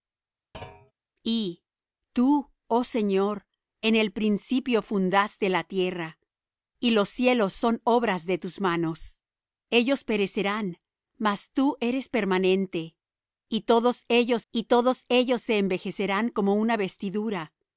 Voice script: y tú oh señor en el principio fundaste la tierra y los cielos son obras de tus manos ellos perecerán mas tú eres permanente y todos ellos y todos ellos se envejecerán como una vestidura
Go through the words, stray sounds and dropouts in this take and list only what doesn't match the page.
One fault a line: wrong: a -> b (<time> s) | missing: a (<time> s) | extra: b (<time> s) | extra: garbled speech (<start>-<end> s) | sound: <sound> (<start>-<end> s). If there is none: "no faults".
sound: thud (0.5-0.9 s)